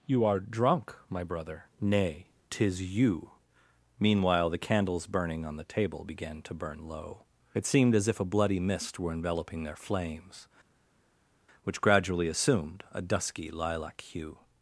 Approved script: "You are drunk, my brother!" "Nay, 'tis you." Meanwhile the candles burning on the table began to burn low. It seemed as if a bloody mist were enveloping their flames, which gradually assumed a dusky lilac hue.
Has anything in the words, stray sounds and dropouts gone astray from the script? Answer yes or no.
no